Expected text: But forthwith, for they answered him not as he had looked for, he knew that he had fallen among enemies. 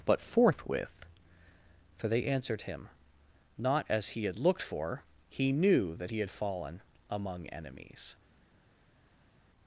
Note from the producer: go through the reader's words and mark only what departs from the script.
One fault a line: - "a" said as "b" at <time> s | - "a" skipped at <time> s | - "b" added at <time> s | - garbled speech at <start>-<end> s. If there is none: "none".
none